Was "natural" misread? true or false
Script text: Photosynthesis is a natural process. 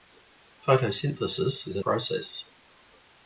true